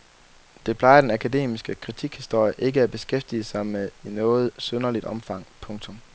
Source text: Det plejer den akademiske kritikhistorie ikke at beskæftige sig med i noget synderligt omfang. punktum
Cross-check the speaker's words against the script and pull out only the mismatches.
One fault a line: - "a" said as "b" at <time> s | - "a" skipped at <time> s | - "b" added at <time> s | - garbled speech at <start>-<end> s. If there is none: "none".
none